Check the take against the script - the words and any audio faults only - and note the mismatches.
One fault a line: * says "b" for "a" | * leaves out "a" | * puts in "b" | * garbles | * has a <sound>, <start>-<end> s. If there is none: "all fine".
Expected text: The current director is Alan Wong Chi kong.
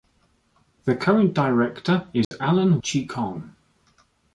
* has a dropout, 2.2-2.3 s
* leaves out "Wong"